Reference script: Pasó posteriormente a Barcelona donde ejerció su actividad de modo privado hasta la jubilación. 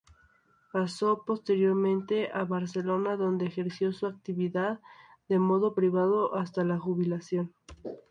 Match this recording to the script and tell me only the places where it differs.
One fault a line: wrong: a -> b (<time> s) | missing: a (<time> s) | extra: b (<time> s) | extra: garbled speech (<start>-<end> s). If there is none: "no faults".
no faults